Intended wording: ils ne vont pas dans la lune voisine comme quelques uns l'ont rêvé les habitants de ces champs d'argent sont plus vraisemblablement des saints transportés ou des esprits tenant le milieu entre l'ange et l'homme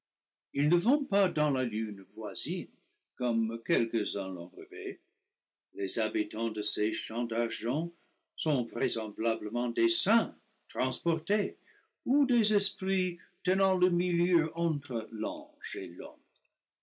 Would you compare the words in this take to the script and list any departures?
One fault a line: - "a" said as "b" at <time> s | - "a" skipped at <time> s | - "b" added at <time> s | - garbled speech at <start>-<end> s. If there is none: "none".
- "plus" skipped at 8.7 s